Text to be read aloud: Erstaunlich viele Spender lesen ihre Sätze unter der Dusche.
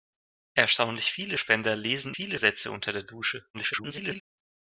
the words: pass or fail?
fail